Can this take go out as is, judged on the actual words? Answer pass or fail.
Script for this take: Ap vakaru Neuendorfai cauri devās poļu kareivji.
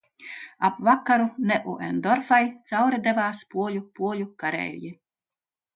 fail